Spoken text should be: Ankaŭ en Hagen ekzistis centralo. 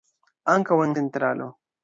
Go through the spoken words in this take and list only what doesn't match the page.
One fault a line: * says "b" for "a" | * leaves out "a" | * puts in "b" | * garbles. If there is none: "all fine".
* leaves out "Hagen ekzistis"